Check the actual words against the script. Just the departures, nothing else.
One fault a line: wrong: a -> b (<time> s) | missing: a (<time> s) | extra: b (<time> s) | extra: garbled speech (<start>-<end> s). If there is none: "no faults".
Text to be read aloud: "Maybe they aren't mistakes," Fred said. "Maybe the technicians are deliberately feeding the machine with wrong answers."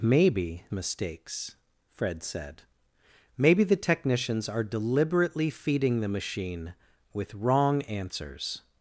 missing: they aren't (0.6 s)